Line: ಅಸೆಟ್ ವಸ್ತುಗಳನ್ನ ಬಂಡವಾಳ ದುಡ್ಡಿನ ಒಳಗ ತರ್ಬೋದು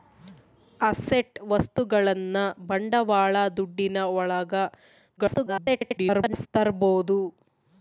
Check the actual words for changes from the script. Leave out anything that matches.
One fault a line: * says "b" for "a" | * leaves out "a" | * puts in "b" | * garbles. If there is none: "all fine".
* garbles